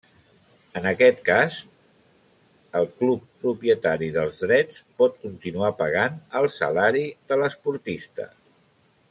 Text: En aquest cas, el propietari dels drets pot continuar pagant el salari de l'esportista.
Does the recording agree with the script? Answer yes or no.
no